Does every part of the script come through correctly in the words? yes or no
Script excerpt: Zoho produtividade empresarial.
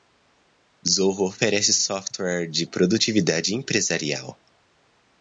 no